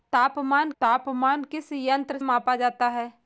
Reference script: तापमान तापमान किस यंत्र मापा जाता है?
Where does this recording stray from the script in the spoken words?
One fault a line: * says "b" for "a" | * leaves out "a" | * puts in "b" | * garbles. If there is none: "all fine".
all fine